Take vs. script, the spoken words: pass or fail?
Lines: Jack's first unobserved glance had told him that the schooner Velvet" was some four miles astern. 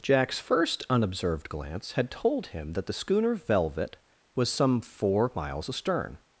pass